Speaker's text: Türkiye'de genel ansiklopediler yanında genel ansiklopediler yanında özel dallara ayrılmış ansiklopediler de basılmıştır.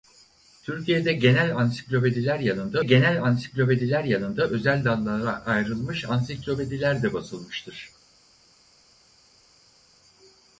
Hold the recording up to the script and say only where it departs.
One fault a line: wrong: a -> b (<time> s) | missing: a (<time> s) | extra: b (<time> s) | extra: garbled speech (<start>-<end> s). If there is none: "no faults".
no faults